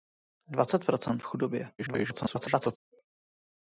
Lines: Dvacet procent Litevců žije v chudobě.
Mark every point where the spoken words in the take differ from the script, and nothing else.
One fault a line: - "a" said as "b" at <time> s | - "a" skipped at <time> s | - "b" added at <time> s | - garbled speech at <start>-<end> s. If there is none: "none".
- "Litevců žije" skipped at 1.2 s
- garbled speech at 1.8-2.8 s